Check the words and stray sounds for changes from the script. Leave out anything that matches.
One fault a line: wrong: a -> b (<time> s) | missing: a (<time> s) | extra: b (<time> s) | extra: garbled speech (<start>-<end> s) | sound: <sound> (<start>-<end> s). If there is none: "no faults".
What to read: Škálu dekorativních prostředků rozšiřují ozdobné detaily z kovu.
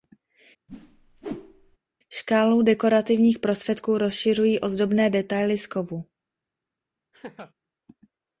sound: whoosh (0.7-1.8 s)
sound: laugh (7.1-7.5 s)